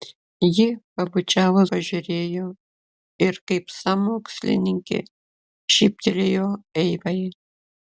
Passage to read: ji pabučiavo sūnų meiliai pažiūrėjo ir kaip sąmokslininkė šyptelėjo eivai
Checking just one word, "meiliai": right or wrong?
wrong